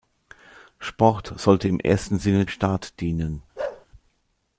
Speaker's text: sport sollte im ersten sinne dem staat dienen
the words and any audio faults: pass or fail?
fail